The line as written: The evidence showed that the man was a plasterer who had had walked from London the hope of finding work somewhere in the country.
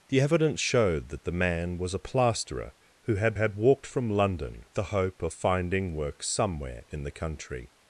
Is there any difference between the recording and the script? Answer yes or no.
no